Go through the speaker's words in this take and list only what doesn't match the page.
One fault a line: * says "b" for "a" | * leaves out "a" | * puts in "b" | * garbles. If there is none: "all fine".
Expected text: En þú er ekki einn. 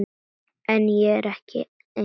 * says "ég" for "þú"